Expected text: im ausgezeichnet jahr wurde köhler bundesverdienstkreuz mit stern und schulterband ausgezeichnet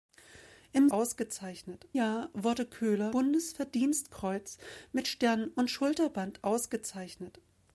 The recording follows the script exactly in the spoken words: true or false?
true